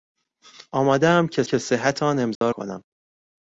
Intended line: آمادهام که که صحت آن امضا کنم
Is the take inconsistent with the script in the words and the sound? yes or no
yes